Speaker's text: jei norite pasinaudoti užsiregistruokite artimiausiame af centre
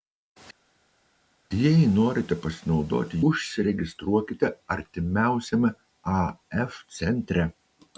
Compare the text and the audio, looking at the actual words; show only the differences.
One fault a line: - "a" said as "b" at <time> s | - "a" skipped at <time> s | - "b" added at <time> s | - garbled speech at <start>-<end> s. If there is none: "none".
none